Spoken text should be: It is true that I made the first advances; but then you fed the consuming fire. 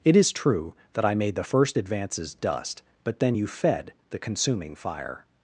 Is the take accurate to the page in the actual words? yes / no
no